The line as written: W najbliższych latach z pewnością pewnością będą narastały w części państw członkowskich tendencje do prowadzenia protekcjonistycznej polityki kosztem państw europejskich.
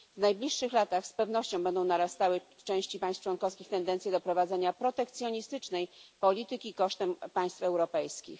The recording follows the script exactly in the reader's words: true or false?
false